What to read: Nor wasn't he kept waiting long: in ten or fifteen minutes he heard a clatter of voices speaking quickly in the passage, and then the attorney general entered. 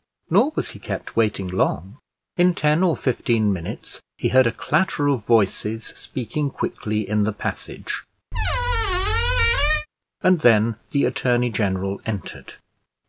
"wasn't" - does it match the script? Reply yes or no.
no